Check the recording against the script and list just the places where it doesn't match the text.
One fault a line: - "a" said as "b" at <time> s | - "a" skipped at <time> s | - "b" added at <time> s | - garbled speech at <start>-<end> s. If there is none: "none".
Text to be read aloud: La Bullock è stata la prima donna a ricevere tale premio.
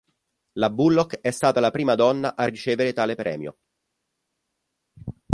none